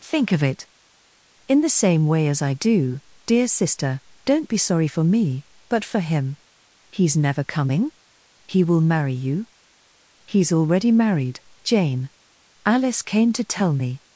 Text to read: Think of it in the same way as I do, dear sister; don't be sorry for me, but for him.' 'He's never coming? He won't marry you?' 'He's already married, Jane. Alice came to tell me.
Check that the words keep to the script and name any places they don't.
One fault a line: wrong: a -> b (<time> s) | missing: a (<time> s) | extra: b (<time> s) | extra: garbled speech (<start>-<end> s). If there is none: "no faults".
wrong: won't -> will (8.6 s)